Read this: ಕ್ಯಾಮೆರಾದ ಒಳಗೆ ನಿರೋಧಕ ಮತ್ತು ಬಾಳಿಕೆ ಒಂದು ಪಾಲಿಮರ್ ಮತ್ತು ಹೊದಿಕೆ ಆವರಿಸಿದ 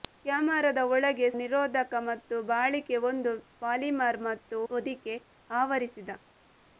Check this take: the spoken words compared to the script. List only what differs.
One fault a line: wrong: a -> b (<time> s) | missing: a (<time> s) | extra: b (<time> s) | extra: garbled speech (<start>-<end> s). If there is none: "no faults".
no faults